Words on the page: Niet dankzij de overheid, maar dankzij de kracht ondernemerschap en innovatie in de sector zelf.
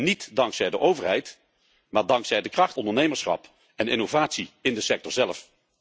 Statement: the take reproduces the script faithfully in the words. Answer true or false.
true